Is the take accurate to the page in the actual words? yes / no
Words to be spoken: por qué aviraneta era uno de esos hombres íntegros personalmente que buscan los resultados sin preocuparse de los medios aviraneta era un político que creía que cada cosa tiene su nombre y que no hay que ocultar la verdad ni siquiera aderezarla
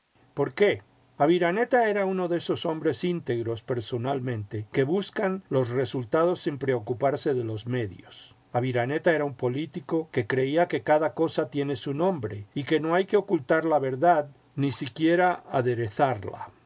yes